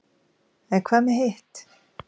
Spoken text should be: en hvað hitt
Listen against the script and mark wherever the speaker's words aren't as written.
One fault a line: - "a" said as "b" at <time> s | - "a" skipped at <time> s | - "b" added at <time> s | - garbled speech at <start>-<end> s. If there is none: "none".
- "með" added at 1.1 s